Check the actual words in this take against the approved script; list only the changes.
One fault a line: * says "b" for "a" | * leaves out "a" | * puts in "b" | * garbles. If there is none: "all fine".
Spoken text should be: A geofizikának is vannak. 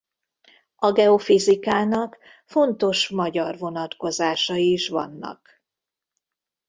* puts in "fontos magyar vonatkozásai"